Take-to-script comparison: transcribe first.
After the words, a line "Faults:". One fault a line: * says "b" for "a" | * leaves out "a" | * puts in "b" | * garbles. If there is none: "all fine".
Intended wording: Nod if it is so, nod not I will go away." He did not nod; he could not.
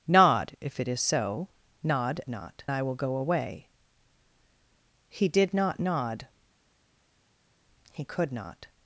Nod if it is so, nod not I will go away." He did not nod; he could not.
Faults:
all fine